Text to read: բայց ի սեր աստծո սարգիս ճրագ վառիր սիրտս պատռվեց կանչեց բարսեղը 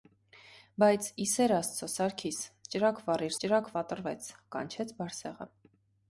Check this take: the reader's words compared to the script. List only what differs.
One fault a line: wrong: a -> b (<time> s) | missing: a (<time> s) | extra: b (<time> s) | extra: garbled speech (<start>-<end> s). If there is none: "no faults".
wrong: սիրտս -> ճրագ (3.5 s)